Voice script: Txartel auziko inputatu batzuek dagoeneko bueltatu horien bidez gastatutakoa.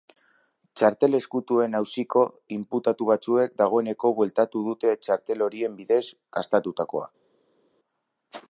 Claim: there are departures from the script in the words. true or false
true